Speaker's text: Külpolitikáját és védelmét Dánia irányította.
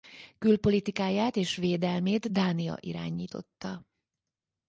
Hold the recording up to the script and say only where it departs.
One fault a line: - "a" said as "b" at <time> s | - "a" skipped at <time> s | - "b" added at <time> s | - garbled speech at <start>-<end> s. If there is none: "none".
none